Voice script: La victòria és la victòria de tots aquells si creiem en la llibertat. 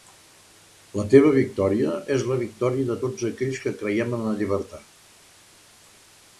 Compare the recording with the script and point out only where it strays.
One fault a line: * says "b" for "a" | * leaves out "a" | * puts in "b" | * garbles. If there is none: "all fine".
* puts in "teva"
* says "que" for "si"